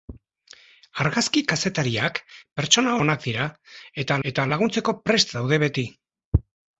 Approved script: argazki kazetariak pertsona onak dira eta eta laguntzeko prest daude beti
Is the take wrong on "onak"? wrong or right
right